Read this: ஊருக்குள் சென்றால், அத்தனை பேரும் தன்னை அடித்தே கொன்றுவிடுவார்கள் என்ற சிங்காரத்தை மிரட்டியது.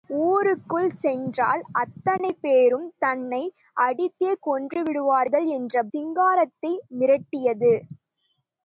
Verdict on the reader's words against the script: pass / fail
pass